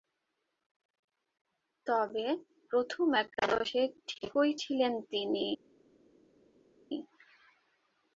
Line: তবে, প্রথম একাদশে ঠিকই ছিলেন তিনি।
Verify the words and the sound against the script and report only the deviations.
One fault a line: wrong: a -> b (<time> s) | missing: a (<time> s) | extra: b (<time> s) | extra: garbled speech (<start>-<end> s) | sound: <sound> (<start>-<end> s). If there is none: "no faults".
no faults